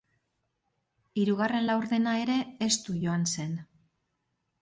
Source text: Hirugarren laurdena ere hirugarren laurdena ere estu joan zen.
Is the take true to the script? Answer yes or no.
no